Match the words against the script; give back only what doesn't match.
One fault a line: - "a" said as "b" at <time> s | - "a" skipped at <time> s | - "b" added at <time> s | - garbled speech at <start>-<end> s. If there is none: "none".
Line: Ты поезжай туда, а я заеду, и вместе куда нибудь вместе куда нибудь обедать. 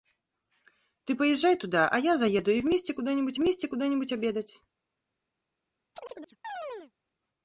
none